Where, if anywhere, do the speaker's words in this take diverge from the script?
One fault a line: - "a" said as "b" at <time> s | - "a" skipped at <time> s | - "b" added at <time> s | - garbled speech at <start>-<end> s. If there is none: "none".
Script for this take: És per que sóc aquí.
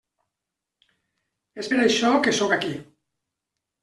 - "això" added at 1.8 s